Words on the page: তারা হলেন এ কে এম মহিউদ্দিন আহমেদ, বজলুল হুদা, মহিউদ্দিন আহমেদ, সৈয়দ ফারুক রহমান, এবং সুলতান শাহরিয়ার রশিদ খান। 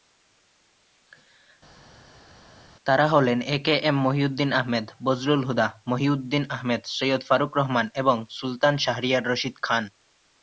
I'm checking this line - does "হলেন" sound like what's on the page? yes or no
yes